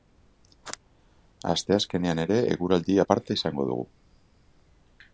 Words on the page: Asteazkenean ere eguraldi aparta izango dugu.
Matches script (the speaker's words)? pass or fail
pass